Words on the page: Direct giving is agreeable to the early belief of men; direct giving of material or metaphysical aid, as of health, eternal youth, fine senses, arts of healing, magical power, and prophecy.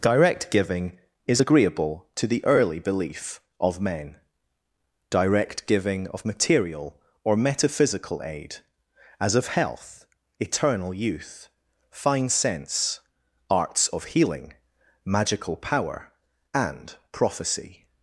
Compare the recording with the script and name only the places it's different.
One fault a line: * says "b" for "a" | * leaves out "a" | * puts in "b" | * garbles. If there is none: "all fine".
* says "sense" for "senses"